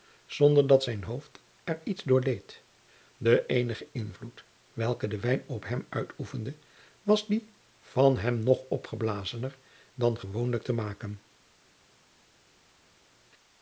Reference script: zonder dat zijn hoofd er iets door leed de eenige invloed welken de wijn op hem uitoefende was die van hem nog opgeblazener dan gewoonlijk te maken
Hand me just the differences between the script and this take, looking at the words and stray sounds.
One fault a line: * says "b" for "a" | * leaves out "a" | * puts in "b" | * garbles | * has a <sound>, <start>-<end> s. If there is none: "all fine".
all fine